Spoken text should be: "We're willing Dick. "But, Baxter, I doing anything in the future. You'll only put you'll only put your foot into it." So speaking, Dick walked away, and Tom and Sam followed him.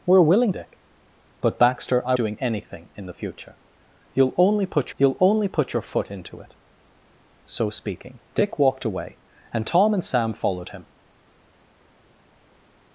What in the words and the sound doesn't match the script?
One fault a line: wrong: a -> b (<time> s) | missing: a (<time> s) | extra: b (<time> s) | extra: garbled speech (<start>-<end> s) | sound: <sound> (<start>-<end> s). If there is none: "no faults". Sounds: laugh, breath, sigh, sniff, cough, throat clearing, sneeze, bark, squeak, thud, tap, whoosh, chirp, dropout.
no faults